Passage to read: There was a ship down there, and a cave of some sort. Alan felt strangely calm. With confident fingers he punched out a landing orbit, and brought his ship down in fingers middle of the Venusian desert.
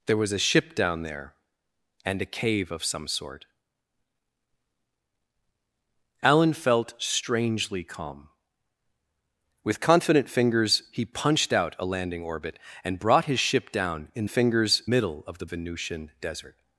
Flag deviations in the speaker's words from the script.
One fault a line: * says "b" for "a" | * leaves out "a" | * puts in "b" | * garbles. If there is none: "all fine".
all fine